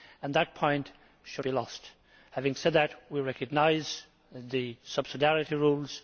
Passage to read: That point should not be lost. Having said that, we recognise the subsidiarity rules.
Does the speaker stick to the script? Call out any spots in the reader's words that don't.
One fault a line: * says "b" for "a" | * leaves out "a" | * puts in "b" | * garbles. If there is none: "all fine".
* leaves out "not"